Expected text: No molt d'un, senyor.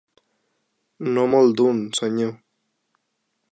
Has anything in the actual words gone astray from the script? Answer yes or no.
no